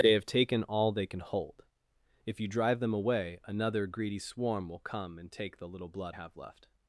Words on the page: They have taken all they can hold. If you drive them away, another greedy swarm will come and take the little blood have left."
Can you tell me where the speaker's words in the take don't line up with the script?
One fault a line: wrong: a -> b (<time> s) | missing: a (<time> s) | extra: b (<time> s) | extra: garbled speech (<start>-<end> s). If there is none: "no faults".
no faults